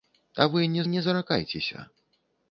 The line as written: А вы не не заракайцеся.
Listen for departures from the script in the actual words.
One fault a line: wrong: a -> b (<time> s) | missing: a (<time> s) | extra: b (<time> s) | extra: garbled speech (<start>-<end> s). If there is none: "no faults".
no faults